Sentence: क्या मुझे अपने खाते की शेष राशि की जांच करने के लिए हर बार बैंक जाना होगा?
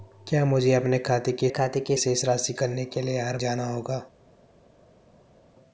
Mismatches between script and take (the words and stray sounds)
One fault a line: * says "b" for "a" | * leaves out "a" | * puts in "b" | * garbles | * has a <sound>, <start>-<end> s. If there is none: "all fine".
* puts in "खाते की"
* leaves out "की जांच"
* leaves out "बार बैंक"